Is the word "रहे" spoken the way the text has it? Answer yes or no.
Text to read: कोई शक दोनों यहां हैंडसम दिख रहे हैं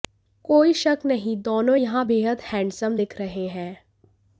yes